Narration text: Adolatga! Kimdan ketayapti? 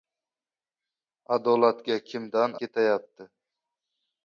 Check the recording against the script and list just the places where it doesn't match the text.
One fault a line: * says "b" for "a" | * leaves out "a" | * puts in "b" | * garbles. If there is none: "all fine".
all fine